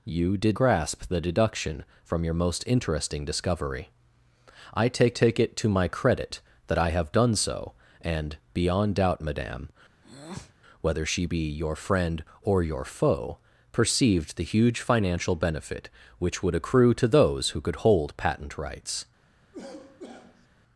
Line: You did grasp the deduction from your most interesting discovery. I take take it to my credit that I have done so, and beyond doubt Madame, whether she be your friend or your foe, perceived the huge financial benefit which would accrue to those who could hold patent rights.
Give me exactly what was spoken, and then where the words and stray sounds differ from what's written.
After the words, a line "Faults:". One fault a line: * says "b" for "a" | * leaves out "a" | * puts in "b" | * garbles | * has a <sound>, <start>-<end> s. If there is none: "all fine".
You did grasp the deduction from your most interesting discovery. I take take it to my credit that I have done so, and beyond doubt Madame, whether she be your friend or your foe, perceived the huge financial benefit which would accrue to those who could hold patent rights.
Faults:
* has a breath, 10.0-10.5 s
* has a cough, 19.5-20.5 s